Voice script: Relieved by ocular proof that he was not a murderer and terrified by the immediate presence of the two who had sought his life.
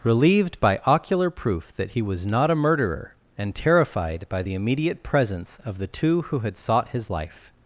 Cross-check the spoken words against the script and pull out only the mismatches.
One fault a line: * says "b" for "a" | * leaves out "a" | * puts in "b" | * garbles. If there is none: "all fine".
all fine